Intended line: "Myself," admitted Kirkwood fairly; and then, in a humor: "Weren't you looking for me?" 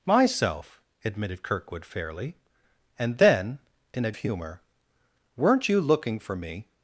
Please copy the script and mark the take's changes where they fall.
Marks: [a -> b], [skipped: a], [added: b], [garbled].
"Myself," admitted Kirkwood fairly; and then, in a humor: "Weren't you looking for me?"